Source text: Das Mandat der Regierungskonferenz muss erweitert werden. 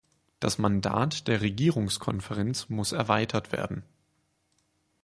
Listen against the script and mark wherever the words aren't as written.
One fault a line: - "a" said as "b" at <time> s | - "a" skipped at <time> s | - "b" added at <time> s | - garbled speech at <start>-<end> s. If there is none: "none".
none